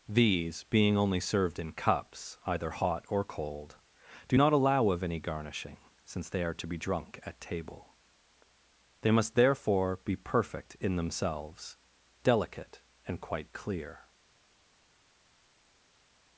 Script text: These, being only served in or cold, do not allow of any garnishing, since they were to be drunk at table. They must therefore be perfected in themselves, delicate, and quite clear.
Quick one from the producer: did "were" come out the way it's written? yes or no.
no